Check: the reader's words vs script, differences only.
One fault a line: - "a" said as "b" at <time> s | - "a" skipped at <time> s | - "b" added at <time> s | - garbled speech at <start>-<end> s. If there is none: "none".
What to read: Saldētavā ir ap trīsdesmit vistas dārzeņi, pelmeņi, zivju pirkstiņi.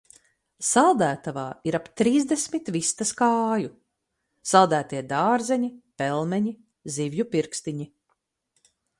- "kāju Saldētie" added at 3.2 s